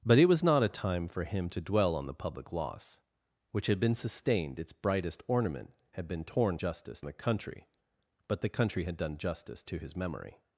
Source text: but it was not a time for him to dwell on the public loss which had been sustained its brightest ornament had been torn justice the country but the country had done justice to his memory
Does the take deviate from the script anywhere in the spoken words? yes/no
no